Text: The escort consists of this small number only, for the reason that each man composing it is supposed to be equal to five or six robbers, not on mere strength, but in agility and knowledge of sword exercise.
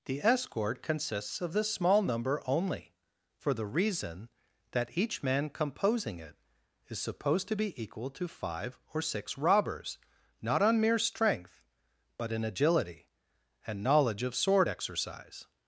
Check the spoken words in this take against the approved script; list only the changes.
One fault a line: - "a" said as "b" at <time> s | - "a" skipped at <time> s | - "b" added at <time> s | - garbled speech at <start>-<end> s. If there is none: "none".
none